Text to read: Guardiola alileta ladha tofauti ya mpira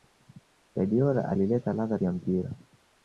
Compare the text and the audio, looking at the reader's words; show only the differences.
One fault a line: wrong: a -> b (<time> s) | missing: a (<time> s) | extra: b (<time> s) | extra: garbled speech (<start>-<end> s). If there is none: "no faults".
missing: tofauti (2.0 s)